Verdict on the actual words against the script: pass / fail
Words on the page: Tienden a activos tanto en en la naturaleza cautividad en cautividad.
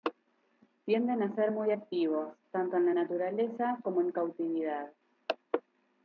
fail